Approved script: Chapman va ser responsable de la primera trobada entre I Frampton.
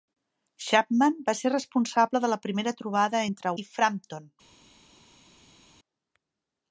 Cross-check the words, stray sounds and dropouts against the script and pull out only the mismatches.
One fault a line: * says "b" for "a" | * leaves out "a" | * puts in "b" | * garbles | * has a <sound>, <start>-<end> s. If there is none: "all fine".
all fine